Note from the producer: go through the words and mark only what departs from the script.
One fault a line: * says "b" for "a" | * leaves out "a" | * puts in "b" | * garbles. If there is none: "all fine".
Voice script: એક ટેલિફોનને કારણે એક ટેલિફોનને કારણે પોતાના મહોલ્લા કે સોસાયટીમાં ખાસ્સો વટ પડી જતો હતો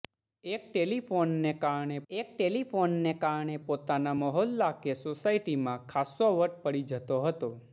all fine